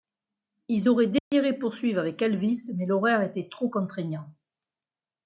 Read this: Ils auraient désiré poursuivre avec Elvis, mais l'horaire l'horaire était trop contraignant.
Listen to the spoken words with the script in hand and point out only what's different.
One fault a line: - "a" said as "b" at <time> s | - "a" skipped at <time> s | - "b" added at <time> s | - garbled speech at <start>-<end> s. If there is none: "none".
- "l'horaire" skipped at 3.2 s